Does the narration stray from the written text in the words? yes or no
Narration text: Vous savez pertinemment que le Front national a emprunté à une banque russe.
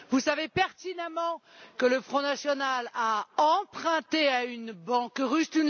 no